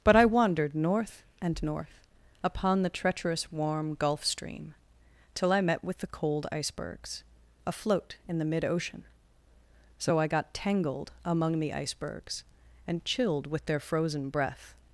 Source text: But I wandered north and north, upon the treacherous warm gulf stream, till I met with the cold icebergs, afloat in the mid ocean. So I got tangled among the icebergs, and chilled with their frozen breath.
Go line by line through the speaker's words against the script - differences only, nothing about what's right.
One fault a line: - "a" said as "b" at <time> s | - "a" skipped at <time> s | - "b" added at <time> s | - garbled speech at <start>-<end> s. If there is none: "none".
none